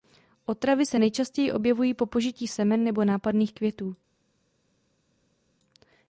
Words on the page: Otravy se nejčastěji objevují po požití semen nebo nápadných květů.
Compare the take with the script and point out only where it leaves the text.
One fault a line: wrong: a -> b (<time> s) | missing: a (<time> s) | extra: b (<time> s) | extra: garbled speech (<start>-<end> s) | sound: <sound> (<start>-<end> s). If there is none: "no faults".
no faults